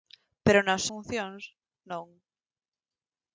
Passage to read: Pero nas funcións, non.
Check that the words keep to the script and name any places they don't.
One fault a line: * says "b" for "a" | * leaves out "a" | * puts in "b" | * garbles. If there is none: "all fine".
all fine